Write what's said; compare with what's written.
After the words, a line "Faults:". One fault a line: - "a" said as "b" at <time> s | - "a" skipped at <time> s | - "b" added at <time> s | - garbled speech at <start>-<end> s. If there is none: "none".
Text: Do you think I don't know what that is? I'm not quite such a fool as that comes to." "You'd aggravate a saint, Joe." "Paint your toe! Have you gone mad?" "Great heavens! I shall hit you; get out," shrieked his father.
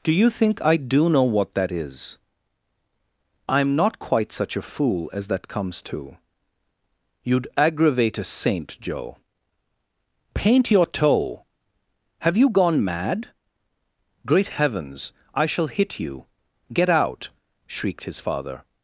Do you think I do know what that is? I'm not quite such a fool as that comes to." "You'd aggravate a saint, Joe." "Paint your toe! Have you gone mad?" "Great heavens! I shall hit you; get out," shrieked his father.
Faults:
- "don't" said as "do" at 0.8 s